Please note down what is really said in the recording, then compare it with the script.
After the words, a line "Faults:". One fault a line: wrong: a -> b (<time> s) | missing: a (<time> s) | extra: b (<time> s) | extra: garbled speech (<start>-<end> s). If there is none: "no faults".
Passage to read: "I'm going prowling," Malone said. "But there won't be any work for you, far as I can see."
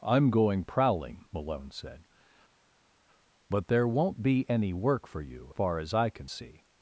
"I'm going prowling," Malone said. "But there won't be any work for you, far as I can see."
Faults:
no faults